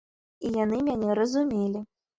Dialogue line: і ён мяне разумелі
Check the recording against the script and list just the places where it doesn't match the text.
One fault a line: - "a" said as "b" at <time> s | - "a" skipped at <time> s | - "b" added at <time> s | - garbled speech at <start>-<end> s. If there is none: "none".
- "ён" said as "яны" at 0.6 s